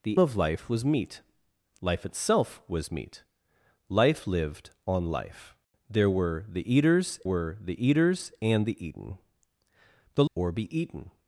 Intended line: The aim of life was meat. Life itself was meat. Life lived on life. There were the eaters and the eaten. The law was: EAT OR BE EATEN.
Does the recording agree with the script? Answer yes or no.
no